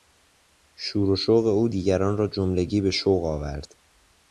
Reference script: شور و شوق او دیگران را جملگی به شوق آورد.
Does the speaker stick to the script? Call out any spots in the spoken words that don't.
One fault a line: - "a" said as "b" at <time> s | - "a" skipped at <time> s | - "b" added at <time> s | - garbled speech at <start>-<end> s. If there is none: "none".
none